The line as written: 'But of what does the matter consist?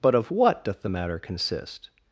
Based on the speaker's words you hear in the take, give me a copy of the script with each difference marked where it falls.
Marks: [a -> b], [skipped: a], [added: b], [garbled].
'But of what [does -> doth] the matter consist?